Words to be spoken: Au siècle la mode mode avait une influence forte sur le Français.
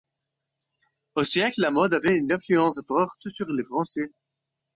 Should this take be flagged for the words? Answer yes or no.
yes